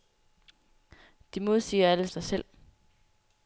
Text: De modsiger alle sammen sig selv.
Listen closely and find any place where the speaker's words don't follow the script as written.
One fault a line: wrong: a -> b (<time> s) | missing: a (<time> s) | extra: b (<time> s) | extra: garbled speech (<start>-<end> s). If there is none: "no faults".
missing: sammen (2.1 s)